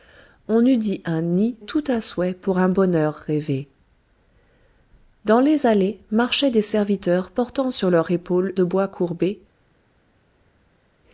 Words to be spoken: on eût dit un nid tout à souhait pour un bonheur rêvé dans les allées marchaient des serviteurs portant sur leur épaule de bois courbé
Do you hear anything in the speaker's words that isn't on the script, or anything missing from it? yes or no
no